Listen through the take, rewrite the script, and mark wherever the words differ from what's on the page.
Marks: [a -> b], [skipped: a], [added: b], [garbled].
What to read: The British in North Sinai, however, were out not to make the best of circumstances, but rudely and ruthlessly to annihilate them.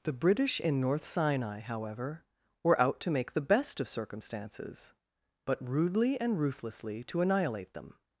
The British in North Sinai, however, were out [skipped: not] to make the best of circumstances, but rudely and ruthlessly to annihilate them.